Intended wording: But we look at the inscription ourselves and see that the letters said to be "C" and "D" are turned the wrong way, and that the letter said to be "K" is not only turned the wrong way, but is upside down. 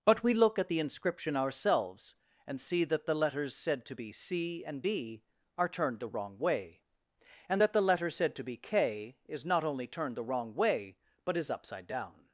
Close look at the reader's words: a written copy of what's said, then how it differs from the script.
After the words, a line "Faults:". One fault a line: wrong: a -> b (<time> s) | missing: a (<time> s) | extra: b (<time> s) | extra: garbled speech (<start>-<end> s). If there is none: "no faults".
But we look at the inscription ourselves and see that the letters said to be "C" and "D" are turned the wrong way, and that the letter said to be "K" is not only turned the wrong way, but is upside down.
Faults:
no faults